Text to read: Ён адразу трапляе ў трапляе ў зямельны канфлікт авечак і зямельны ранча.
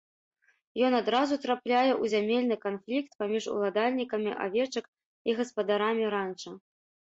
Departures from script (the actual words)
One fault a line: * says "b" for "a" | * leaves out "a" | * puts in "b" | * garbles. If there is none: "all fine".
* says "зямельны канфлікт паміж уладальнікамі" for "трапляе ў зямельны канфлікт"
* says "гаспадарамі" for "зямельны"